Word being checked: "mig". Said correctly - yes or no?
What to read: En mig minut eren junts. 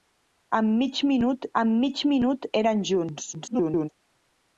yes